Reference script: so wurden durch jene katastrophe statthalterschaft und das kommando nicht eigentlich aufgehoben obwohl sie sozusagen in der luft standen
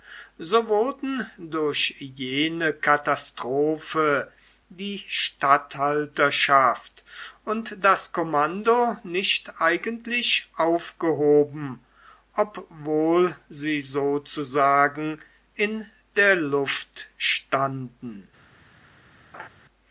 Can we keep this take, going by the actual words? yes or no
no